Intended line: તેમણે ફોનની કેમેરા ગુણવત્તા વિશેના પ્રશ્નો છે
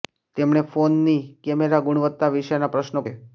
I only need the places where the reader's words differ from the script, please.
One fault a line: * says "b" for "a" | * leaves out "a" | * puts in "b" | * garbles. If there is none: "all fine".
all fine